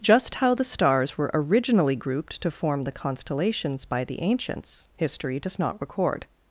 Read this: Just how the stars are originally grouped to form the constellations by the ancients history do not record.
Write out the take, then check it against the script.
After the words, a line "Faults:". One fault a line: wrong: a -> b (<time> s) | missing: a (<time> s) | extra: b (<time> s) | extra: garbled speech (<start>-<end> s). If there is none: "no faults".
Just how the stars were originally grouped to form the constellations by the ancients history does not record.
Faults:
wrong: are -> were (1.1 s)
wrong: do -> does (5.4 s)